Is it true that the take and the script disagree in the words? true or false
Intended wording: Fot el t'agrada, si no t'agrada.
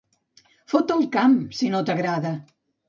true